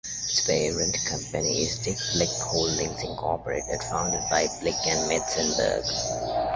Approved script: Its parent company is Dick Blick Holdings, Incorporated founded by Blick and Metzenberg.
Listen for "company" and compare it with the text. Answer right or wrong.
right